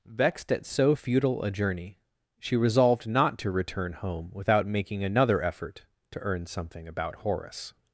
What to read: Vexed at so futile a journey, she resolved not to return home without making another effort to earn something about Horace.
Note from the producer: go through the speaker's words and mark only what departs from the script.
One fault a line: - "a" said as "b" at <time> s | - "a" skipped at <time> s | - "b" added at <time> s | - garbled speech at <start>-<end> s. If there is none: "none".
none